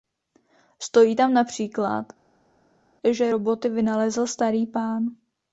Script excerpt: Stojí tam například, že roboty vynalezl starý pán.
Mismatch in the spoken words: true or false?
false